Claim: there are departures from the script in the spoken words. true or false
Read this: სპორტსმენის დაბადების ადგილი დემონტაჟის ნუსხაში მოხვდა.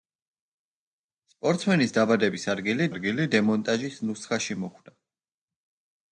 true